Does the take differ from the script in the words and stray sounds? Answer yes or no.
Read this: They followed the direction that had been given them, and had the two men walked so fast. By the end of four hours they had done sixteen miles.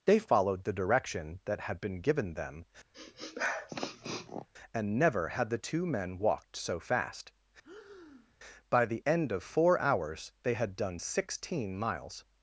yes